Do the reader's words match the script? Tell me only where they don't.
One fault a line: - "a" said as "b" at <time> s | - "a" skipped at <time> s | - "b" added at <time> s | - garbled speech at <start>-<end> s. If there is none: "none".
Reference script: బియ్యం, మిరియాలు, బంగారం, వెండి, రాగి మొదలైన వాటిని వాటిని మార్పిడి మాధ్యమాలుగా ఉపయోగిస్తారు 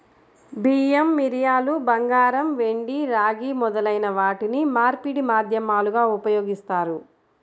- "వాటిని" skipped at 4.6 s